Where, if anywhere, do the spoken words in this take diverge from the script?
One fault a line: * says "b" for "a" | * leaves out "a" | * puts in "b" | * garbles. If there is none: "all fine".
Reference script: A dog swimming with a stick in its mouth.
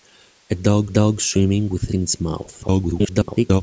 * puts in "dog"
* leaves out "stick"
* garbles